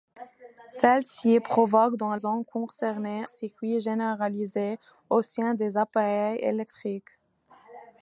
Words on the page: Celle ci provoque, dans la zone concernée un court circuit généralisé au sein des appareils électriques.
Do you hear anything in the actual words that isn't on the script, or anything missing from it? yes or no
yes